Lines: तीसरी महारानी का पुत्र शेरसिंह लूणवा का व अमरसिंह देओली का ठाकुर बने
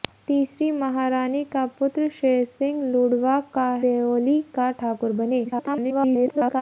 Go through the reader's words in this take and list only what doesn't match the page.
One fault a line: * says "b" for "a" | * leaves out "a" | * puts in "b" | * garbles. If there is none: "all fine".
* leaves out "व अमरसिंह"
* garbles